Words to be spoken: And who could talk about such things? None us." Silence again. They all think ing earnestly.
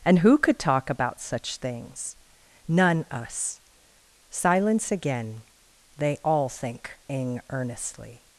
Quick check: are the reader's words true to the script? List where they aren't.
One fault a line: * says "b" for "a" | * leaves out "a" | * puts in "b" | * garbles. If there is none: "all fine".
all fine